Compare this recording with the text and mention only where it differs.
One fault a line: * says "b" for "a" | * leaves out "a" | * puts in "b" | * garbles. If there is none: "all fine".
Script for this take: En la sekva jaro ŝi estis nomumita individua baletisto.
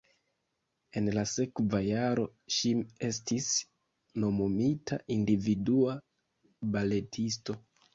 all fine